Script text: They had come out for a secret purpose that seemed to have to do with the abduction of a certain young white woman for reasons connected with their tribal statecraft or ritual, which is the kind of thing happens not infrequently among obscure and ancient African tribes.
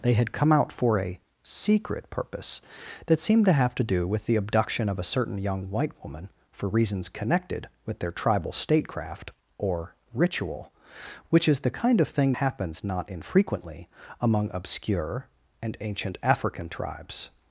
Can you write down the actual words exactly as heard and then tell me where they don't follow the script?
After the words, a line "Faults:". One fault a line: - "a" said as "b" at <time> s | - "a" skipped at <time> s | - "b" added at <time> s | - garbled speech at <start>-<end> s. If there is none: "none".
They had come out for a secret purpose that seemed to have to do with the abduction of a certain young white woman for reasons connected with their tribal statecraft or ritual, which is the kind of thing happens not infrequently among obscure and ancient African tribes.
Faults:
none